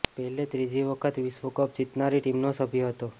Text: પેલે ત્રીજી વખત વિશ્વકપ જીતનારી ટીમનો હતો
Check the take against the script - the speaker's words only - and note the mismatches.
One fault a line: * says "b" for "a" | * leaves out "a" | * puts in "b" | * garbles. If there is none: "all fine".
* puts in "સભ્ય"